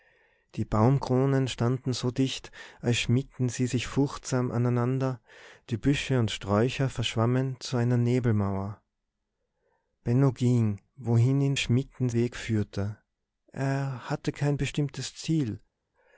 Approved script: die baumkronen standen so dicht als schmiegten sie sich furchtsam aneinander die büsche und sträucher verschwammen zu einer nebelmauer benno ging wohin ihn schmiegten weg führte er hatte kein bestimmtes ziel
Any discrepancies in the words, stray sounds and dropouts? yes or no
no